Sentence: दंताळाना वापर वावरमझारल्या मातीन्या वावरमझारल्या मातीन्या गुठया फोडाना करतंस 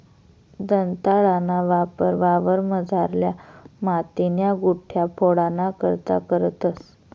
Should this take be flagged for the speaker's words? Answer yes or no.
yes